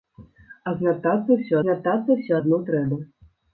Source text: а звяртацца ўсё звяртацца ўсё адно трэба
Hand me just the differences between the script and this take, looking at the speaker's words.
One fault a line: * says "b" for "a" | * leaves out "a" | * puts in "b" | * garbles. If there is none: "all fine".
all fine